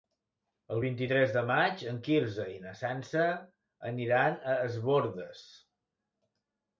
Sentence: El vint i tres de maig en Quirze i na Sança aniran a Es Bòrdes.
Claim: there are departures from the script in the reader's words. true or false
false